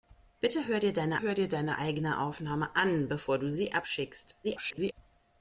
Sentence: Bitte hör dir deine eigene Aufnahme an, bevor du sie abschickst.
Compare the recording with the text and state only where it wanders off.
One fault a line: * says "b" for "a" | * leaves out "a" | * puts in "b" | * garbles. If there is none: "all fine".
* puts in "hör dir deine"
* garbles